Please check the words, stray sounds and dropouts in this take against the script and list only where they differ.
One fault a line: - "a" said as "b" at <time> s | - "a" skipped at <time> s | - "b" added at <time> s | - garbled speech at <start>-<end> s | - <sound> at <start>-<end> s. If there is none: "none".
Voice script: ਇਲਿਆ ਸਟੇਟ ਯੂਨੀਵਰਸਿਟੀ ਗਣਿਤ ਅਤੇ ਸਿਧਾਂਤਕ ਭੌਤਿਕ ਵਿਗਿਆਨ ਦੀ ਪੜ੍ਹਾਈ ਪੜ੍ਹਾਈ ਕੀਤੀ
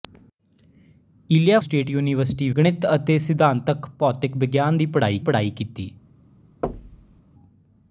- thud at 6.6-7.2 s